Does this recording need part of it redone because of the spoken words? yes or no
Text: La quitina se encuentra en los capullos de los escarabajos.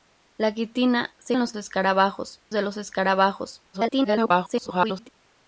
yes